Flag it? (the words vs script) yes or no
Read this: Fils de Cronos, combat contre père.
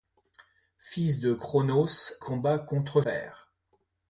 no